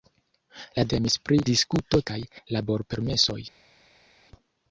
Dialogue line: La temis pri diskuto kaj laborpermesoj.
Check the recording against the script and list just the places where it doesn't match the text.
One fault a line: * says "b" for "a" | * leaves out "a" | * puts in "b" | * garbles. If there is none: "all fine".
all fine